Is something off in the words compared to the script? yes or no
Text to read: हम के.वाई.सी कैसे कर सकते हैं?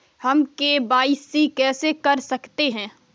no